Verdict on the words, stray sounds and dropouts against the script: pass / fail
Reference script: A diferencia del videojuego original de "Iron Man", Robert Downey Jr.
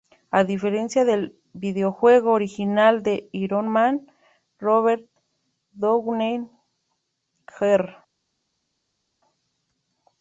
pass